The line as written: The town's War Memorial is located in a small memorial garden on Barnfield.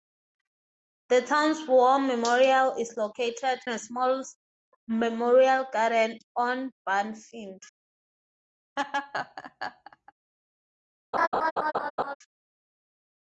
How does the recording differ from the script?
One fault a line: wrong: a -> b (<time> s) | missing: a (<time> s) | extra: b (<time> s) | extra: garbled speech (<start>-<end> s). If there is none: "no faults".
missing: in (3.6 s)